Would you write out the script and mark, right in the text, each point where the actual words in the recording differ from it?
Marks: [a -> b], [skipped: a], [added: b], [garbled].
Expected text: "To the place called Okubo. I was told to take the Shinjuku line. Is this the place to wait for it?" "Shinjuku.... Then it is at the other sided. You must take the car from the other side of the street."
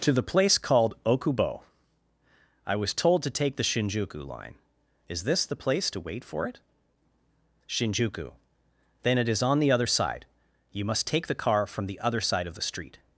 "To the place called Okubo. I was told to take the Shinjuku line. Is this the place to wait for it?" "Shinjuku.... Then it is [at -> on] the other [sided. -> side] You must take the car from the other side of the street."